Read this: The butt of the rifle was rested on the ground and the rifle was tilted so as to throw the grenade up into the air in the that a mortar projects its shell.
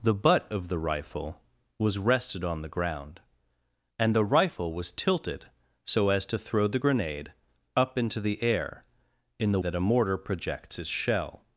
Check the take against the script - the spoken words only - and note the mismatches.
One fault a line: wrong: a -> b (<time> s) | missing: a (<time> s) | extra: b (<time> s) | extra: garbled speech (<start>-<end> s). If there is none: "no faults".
no faults